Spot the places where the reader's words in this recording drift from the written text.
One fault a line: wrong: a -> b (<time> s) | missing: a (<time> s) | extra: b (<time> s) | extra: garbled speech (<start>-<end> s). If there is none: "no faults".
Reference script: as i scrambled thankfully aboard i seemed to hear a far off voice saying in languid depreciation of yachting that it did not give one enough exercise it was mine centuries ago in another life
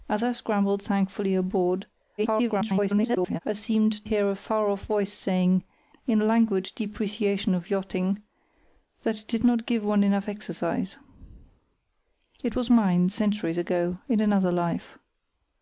extra: garbled speech (2.2-3.4 s)
missing: to (4.0 s)